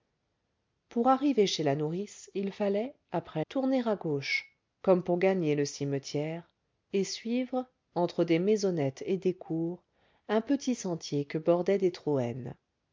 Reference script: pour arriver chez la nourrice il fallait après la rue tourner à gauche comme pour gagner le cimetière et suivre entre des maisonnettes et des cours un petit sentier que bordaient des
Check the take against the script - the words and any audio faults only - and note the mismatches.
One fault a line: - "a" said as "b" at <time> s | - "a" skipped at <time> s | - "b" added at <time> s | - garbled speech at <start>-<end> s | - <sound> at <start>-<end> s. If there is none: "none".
- "la rue" skipped at 3.5 s